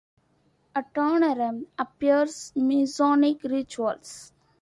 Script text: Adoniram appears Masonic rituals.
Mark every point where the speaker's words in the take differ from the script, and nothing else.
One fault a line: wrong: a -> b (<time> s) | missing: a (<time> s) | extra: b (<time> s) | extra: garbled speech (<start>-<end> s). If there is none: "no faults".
no faults